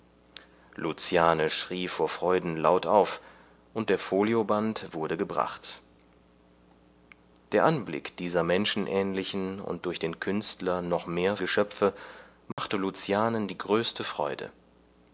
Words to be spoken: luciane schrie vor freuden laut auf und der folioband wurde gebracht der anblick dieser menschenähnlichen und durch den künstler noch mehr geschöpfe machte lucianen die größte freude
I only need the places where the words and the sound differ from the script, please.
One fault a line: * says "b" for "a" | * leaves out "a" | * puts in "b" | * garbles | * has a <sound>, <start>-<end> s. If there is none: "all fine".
* has a dropout, 12.5-12.6 s